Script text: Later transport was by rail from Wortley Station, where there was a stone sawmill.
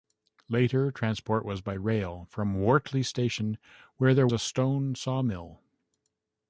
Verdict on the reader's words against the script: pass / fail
fail